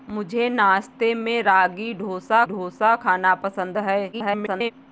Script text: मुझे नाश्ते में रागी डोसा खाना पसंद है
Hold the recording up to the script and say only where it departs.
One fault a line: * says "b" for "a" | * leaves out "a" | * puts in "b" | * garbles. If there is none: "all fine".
* puts in "डोसा"
* garbles